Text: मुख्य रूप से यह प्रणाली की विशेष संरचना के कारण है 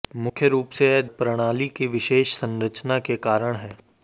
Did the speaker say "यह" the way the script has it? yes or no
yes